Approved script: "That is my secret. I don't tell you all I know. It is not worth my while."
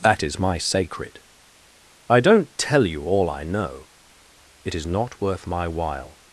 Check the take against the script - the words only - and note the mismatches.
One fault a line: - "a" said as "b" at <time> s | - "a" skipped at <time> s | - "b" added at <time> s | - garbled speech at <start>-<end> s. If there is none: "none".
- "secret" said as "sacred" at 0.6 s